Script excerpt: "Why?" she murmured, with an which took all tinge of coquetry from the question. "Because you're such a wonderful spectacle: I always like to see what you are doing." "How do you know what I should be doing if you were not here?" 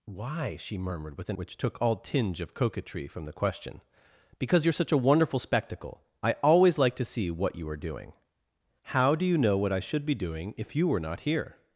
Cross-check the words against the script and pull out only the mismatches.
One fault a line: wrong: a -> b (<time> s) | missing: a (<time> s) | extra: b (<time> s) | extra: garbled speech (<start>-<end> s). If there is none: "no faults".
no faults